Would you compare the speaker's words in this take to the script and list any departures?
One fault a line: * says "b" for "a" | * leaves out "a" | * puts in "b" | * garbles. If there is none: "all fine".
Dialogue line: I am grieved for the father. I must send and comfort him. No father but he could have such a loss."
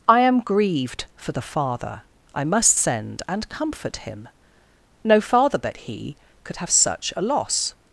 all fine